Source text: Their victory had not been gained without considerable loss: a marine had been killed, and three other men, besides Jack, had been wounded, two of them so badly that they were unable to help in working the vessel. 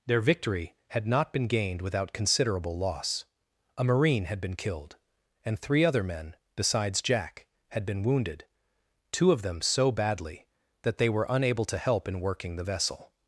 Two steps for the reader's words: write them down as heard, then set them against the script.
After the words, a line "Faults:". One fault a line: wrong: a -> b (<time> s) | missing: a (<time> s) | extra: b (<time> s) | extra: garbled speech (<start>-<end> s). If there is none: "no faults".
Their victory had not been gained without considerable loss: a marine had been killed, and three other men, besides Jack, had been wounded, two of them so badly that they were unable to help in working the vessel.
Faults:
no faults